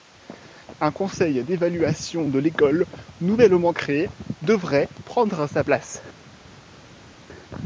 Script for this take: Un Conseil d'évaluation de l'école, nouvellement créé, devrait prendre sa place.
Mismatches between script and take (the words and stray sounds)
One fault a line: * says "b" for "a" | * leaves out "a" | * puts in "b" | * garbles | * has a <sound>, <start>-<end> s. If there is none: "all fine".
all fine